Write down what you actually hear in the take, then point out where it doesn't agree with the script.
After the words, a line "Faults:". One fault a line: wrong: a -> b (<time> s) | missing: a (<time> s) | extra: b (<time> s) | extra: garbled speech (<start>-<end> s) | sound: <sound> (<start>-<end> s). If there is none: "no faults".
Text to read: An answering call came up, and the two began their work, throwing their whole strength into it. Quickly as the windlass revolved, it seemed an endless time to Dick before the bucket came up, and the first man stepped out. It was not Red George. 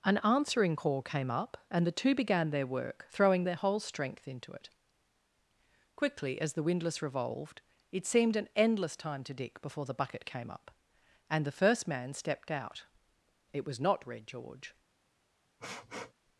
An answering call came up, and the two began their work, throwing their whole strength into it. Quickly as the windlass revolved, it seemed an endless time to Dick before the bucket came up, and the first man stepped out. It was not Red George.
Faults:
sound: sniff (15.6-16.1 s)